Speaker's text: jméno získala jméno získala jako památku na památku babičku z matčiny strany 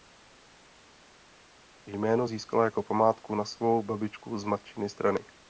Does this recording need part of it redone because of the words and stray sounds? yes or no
yes